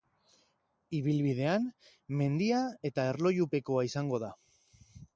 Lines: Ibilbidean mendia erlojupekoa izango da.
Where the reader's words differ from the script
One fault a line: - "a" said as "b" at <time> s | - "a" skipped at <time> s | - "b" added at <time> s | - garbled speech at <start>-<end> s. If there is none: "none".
- "eta" added at 2.9 s